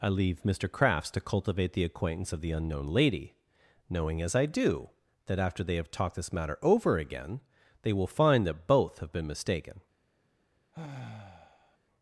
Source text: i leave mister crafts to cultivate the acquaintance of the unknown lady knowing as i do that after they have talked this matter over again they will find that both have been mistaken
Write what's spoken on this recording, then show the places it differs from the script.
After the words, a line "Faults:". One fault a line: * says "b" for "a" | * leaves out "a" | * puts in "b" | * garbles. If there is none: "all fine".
i leave mister crafts to cultivate the acquaintance of the unknown lady knowing as i do that after they have talked this matter over again they will find that both have been mistaken
Faults:
all fine